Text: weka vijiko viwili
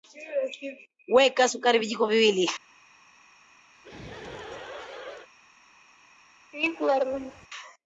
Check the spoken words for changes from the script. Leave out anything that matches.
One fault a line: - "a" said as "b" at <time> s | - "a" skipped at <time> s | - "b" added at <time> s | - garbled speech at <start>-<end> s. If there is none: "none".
- "sukari" added at 1.5 s